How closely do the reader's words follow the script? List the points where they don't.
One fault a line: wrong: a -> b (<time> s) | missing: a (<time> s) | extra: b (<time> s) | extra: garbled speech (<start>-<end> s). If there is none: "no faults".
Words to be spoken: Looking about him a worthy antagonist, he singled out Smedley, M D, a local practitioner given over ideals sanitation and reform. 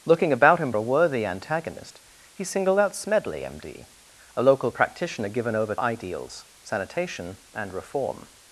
no faults